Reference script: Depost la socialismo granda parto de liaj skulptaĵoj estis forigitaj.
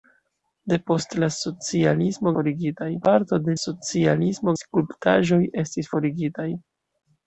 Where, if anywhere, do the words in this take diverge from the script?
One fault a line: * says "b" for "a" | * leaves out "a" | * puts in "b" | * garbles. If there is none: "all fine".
* says "forigitaj" for "granda"
* says "socialismo" for "liaj"